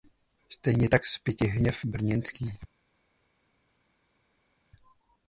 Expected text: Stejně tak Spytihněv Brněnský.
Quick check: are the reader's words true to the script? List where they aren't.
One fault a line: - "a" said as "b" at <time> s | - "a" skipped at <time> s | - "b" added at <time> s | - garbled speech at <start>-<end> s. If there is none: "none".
none